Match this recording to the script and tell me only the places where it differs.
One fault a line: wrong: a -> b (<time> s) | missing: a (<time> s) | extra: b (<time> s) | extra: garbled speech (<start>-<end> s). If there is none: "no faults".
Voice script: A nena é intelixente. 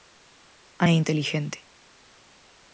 missing: nena (0.8 s)